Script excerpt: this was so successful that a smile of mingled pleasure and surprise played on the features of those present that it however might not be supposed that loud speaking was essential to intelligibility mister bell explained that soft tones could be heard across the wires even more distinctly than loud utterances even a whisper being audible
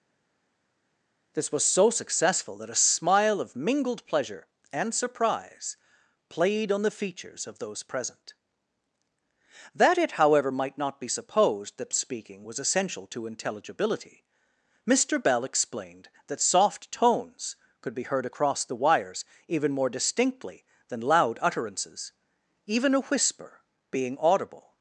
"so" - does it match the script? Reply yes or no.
yes